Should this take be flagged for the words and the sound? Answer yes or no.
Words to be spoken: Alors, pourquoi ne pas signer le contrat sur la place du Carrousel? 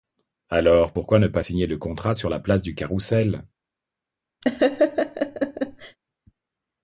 yes